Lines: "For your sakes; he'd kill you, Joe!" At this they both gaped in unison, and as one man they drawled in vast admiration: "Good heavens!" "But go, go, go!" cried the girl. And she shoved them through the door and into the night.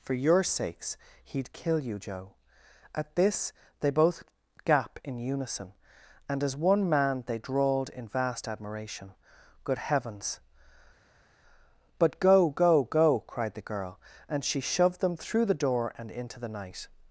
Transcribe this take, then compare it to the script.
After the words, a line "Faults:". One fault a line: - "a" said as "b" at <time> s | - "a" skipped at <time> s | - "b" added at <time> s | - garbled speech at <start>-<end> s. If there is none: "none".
"For your sakes; he'd kill you, Joe!" At this they both gap in unison, and as one man they drawled in vast admiration: "Good heavens!" "But go, go, go!" cried the girl. And she shoved them through the door and into the night.
Faults:
- "gaped" said as "gap" at 4.7 s